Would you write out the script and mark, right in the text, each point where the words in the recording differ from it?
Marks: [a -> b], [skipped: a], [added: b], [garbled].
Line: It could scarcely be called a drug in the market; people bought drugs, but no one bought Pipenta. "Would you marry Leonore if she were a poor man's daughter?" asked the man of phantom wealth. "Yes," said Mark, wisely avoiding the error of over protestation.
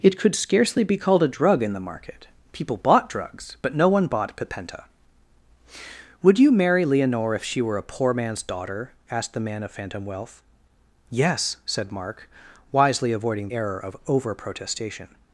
It could scarcely be called a drug in the market; people bought drugs, but no one bought Pipenta. "Would you marry Leonore if she were a poor man's daughter?" asked the man of phantom wealth. "Yes," said Mark, wisely avoiding [skipped: the] error of over protestation.